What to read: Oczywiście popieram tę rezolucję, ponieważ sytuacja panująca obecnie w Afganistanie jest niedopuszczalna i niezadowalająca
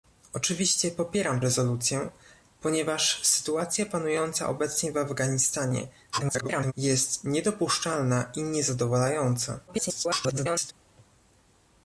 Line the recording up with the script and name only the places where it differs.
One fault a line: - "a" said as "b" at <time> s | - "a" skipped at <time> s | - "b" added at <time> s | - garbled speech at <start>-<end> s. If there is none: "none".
- "tę" skipped at 1.4 s
- garbled speech at 6.1-6.7 s
- garbled speech at 9.7-10.7 s